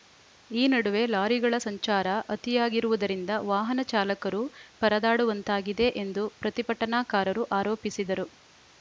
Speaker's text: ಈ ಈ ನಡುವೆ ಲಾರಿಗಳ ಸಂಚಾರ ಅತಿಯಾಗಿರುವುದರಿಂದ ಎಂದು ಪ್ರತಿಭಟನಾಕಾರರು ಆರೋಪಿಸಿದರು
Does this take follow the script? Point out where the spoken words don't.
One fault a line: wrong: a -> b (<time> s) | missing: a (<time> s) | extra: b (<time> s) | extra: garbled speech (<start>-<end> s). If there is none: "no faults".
missing: ಈ (0.7 s)
extra: ವಾಹನ ಚಾಲಕರು ಪರದಾಡುವಂತಾಗಿದೆ (3.5 s)